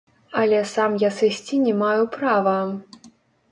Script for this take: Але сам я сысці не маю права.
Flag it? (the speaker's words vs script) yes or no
no